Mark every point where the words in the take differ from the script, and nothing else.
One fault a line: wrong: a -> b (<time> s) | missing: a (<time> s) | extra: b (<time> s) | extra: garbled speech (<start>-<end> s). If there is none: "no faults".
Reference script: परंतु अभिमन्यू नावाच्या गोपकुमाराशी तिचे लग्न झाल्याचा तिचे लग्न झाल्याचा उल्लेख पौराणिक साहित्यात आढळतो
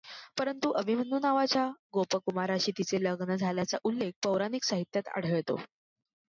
missing: तिचे लग्न झाल्याचा (3.8 s)